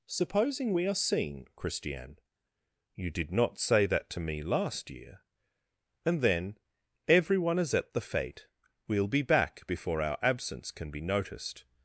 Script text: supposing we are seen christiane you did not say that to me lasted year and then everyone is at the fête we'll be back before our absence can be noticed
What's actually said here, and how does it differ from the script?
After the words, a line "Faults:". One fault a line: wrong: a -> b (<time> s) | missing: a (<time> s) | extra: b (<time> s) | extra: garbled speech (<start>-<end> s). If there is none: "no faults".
supposing we are seen christiane you did not say that to me last year and then everyone is at the fête we'll be back before our absence can be noticed
Faults:
wrong: lasted -> last (4.4 s)